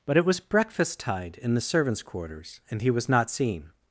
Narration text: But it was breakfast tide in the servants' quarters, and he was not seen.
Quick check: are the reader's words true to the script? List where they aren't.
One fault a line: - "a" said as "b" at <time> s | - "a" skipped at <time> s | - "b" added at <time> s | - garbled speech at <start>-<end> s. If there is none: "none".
none